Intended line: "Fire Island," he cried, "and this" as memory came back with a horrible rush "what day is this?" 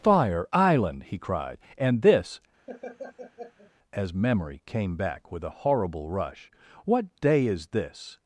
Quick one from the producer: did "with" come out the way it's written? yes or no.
yes